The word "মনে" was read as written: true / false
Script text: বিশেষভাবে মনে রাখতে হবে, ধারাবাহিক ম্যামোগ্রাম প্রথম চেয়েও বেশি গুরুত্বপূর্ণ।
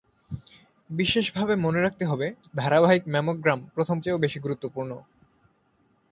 true